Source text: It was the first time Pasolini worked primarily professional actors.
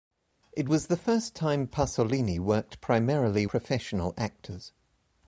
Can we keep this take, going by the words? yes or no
yes